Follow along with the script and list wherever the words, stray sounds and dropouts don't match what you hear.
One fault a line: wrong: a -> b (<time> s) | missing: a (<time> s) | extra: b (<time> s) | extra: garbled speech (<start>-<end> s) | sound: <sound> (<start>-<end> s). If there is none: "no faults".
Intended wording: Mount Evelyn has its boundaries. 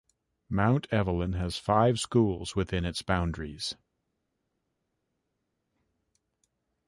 extra: five schools within (1.6 s)